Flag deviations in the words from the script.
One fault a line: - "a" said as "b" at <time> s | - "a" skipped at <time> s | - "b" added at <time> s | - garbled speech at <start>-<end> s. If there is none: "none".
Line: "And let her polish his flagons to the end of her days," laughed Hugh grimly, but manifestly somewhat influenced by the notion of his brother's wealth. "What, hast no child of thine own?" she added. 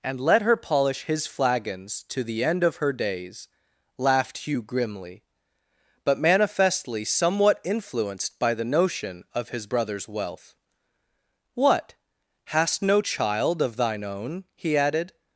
- "she" said as "he" at 14.5 s